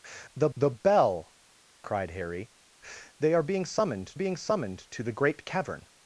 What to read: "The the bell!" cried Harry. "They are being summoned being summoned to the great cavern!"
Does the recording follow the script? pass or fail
pass